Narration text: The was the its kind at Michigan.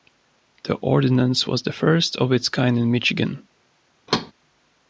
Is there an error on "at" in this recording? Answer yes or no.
yes